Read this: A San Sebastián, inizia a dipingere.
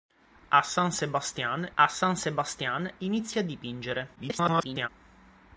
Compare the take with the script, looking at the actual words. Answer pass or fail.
fail